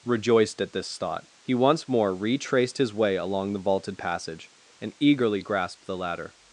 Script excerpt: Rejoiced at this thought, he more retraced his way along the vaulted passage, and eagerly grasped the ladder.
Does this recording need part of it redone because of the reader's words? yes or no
yes